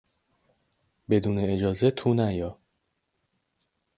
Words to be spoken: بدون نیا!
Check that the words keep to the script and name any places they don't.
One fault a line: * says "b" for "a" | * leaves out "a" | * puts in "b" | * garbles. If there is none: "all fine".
* puts in "اجازه تو"